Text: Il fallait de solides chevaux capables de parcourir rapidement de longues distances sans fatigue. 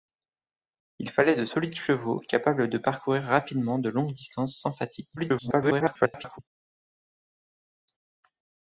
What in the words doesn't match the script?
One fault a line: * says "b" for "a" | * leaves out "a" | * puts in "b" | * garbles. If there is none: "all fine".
* garbles